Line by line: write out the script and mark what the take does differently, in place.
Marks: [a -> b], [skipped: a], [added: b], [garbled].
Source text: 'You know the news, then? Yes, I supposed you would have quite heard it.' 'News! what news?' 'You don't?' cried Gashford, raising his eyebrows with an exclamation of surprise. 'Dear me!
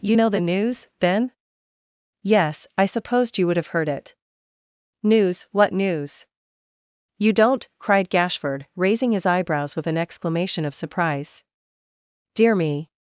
'You know the news, then? Yes, I supposed you would have [skipped: quite] heard it.' 'News! what news?' 'You don't?' cried Gashford, raising his eyebrows with an exclamation of surprise. 'Dear me!